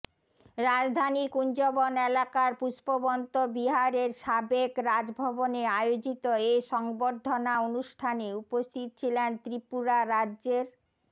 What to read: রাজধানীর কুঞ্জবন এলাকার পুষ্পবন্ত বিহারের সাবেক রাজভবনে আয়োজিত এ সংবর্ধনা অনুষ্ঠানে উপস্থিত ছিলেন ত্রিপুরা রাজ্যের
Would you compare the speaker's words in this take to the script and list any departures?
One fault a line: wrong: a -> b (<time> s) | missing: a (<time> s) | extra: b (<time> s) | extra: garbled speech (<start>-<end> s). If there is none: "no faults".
no faults